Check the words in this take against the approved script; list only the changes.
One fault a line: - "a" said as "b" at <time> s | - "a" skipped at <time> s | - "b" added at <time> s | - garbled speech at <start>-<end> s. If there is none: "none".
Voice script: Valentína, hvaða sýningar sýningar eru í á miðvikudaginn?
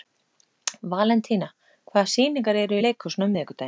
- "sýningar" skipped at 2.6 s
- "leikhúsinu" added at 2.8 s